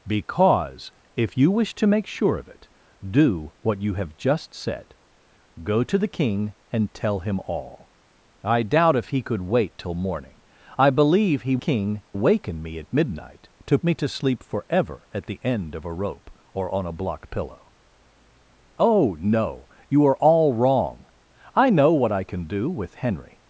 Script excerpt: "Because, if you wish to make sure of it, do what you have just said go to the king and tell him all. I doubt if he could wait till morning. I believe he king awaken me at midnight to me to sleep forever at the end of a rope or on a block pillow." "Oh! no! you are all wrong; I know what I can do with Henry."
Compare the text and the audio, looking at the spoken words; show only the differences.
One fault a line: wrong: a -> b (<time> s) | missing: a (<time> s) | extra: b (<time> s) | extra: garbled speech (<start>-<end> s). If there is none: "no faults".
no faults